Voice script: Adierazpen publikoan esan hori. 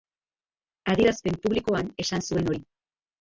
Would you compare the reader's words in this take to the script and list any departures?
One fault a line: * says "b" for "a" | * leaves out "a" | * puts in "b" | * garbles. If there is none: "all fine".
* puts in "zuen"